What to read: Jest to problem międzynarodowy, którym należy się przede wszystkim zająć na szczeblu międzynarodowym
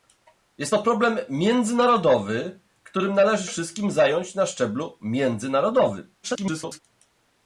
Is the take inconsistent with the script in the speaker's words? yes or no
yes